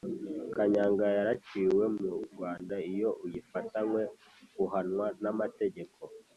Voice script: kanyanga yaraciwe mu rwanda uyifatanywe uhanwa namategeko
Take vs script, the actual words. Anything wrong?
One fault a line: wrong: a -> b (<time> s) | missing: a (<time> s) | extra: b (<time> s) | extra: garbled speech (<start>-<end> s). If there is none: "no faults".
extra: iyo (2.9 s)